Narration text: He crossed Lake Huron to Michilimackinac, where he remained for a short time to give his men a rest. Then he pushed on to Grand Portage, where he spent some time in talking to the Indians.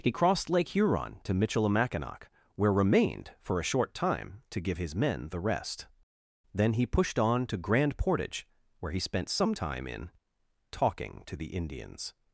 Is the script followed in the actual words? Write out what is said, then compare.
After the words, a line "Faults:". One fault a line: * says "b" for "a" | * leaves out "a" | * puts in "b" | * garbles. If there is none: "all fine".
He crossed Lake Huron to Michilimackinac, where remained for a short time to give his men the rest. Then he pushed on to Grand Portage, where he spent some time in talking to the Indians.
Faults:
* leaves out "he"
* says "the" for "a"